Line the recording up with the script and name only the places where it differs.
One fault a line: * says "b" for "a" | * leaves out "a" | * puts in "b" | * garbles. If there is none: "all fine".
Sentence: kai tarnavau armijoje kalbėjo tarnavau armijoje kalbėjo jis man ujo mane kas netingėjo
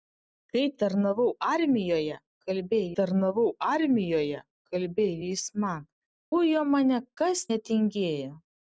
all fine